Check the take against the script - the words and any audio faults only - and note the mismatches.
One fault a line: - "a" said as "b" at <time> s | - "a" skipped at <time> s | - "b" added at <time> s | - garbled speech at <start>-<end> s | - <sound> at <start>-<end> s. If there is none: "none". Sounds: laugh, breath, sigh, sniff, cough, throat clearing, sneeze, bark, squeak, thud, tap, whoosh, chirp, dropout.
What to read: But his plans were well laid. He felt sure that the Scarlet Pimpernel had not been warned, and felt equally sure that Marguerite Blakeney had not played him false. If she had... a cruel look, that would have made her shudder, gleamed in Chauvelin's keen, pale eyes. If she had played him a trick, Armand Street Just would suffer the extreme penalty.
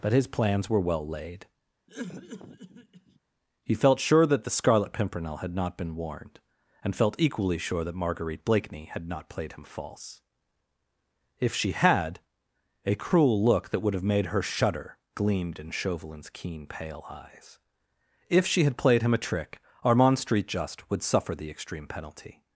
- cough at 1.9-3.2 s